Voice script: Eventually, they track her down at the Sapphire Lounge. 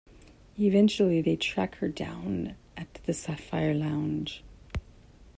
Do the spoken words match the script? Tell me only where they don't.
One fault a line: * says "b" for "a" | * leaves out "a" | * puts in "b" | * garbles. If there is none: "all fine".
all fine